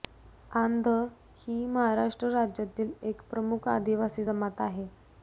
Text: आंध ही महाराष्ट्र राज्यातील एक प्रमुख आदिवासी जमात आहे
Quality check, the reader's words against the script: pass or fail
pass